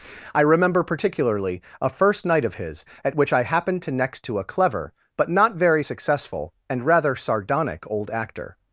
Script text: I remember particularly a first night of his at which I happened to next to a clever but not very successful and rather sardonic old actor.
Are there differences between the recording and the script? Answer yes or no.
no